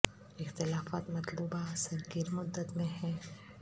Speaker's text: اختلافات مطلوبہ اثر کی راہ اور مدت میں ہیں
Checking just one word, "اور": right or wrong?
wrong